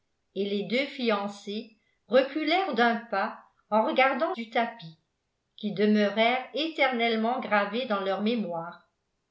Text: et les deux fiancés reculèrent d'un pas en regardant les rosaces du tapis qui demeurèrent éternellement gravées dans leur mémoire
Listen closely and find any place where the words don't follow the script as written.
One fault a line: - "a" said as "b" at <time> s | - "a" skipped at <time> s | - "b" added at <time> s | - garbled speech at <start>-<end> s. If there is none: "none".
- "les rosaces" skipped at 4.3 s